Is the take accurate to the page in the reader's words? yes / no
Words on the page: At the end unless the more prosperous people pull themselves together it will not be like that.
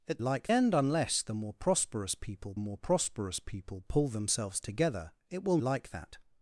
no